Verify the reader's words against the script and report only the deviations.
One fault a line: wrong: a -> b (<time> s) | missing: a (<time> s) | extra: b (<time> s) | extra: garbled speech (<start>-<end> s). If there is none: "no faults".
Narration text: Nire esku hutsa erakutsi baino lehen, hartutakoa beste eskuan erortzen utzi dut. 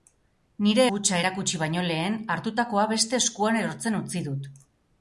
missing: esku (0.8 s)